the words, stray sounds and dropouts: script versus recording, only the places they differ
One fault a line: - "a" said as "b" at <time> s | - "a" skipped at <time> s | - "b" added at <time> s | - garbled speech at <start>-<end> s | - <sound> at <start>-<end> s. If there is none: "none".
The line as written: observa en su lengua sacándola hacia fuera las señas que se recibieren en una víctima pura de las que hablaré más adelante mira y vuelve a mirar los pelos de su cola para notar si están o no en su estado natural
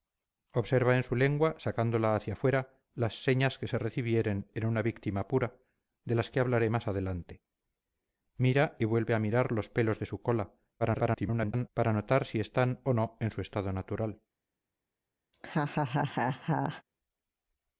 - garbled speech at 10.8-11.7 s
- laugh at 15.3-16.8 s